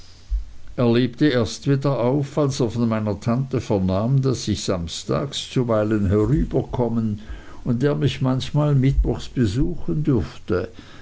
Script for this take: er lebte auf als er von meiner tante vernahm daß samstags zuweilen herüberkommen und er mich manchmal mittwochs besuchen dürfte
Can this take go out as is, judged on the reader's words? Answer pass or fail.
fail